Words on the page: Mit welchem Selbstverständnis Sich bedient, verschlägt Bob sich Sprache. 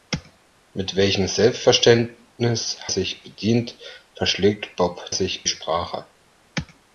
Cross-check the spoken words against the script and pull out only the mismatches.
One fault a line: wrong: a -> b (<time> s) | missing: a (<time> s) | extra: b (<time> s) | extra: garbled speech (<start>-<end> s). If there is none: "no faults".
no faults